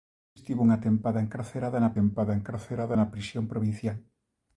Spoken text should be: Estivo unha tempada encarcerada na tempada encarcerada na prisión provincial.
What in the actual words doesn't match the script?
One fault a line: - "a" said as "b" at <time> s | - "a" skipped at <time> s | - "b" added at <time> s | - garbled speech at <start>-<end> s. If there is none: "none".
none